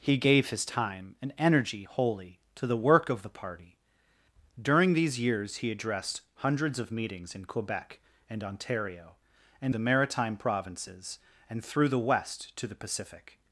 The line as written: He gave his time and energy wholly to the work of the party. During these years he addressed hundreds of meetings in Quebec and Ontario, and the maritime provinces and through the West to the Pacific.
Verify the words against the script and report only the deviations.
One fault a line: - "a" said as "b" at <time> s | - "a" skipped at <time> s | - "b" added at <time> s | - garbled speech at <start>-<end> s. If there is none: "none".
none